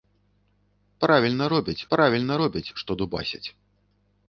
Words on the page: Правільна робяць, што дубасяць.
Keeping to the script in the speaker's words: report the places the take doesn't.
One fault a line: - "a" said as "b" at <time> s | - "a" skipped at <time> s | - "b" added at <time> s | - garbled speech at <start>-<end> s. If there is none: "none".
- "правільна робяць" added at 1.9 s